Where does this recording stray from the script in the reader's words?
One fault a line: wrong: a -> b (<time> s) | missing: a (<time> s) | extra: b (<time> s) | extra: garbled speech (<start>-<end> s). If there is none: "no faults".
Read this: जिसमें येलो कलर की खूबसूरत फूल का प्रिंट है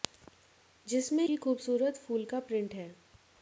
missing: येलो कलर (1.2 s)